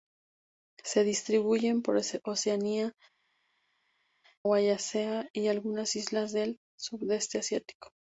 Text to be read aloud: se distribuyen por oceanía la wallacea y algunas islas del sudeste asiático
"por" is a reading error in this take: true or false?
false